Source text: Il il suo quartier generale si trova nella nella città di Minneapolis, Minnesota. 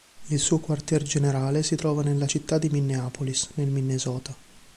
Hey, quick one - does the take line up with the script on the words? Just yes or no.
no